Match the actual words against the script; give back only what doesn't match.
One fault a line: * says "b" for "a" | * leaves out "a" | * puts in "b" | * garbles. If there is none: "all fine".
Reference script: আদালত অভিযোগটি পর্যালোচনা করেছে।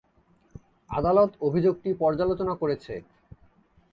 all fine